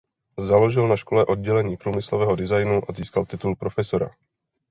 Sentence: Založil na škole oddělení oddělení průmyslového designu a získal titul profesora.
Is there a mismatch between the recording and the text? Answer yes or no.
yes